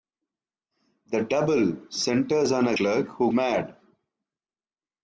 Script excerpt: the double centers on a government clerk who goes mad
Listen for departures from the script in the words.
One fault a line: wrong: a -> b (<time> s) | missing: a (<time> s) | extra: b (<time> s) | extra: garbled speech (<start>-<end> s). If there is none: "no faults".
missing: government (2.8 s)
missing: goes (3.3 s)